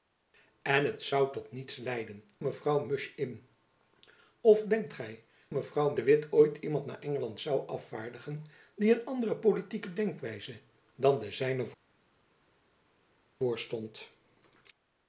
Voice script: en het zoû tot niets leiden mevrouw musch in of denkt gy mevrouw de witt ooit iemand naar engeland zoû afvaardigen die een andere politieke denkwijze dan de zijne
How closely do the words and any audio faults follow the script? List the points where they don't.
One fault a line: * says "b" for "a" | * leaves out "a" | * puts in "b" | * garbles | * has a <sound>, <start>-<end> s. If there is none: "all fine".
all fine